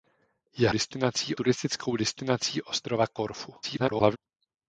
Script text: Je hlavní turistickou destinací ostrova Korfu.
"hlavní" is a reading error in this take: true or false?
true